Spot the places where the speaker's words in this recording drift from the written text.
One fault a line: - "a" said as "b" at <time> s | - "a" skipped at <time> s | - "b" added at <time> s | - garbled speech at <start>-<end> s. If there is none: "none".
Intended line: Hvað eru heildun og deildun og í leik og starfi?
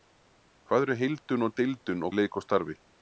none